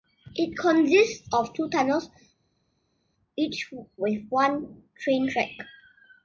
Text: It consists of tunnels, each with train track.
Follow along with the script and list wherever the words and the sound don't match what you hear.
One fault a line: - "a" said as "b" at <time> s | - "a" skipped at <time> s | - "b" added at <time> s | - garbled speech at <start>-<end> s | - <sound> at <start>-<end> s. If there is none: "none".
- "two" added at 1.6 s
- "one" added at 4.3 s